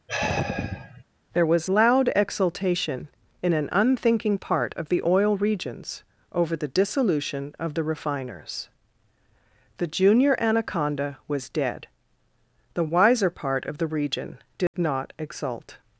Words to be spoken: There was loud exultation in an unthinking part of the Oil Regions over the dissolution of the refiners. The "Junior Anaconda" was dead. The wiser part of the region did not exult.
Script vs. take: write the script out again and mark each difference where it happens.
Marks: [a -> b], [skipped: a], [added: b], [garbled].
There was loud exultation in an unthinking part of the Oil Regions over the dissolution of the refiners. The "Junior Anaconda" was dead. The wiser part of the region did not exult.